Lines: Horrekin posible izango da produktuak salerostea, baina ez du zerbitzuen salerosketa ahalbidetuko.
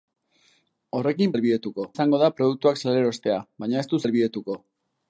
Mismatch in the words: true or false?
true